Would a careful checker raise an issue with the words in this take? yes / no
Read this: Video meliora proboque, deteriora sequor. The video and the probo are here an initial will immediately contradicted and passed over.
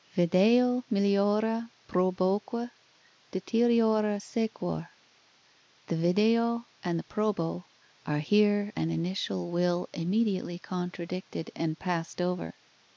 no